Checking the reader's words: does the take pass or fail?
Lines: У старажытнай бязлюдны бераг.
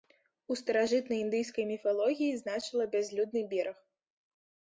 fail